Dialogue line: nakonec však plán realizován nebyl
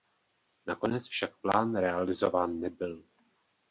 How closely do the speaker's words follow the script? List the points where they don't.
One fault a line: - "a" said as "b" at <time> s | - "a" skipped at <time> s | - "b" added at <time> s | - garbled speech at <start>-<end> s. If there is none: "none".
none